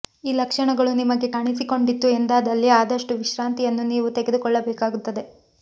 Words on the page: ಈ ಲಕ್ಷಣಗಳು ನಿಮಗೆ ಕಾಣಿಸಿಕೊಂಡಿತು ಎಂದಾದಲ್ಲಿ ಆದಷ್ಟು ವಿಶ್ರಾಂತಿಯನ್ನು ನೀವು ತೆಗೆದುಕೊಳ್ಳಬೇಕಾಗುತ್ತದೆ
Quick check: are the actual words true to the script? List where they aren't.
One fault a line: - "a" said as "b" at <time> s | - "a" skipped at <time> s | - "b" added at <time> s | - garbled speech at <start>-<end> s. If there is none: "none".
none